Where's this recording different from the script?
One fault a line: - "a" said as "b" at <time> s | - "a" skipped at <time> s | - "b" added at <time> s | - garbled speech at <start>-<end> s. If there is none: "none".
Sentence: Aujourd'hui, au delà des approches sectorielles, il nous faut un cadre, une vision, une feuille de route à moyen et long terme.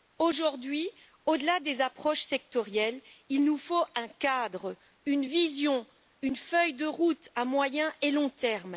none